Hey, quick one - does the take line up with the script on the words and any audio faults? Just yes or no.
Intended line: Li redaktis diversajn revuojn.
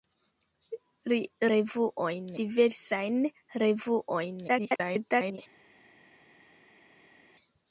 no